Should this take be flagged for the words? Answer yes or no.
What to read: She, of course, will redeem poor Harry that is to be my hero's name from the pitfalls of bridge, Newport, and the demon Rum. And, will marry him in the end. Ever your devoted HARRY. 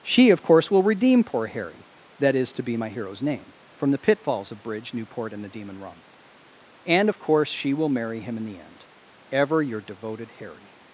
yes